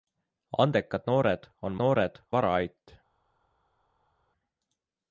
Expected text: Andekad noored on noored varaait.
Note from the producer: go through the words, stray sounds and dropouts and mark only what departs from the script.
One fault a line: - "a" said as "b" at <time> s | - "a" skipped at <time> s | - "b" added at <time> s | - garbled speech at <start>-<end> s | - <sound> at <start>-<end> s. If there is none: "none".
none